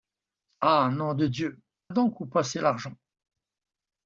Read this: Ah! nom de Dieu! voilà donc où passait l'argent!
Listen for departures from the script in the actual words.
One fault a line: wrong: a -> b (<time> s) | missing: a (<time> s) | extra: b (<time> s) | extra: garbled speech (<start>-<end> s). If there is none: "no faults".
missing: voilà (1.6 s)